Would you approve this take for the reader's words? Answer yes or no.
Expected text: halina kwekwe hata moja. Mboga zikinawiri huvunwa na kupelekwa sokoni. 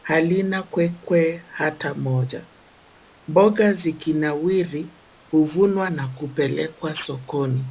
yes